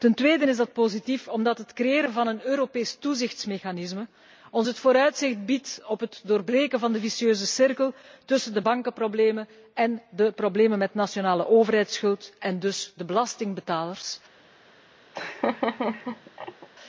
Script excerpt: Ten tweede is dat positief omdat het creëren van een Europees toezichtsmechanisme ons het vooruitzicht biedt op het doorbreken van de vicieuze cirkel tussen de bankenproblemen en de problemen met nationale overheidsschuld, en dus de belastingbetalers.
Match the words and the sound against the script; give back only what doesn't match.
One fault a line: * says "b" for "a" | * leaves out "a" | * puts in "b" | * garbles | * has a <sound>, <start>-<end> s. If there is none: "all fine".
* has a laugh, 15.1-16.7 s